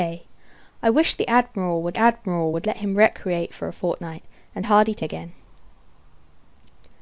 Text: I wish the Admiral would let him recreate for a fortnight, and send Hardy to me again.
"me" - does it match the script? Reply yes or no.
no